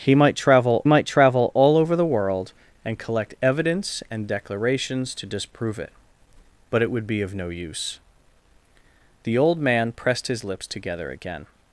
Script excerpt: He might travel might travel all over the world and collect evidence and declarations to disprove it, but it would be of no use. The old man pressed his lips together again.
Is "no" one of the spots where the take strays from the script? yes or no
no